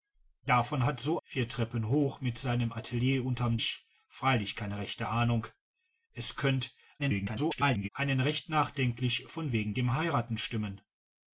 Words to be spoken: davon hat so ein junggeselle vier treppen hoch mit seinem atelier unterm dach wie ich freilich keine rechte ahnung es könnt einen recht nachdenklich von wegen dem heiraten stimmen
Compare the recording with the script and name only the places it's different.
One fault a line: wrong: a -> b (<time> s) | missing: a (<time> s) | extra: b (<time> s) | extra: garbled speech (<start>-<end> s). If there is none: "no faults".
missing: ein junggeselle (1.2 s)
missing: dach wie (3.6 s)
extra: garbled speech (7.0-7.9 s)